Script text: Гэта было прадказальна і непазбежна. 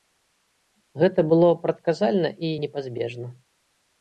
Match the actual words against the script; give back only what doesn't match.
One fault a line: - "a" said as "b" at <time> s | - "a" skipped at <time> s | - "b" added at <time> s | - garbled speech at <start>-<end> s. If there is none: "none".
none